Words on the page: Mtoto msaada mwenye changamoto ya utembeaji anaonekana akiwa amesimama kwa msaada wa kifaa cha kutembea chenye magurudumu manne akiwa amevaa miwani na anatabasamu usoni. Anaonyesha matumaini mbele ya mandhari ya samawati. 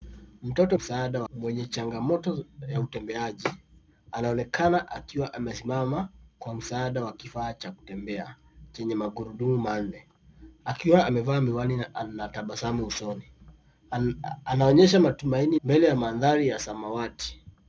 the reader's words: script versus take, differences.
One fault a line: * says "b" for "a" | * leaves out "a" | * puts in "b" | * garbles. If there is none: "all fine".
all fine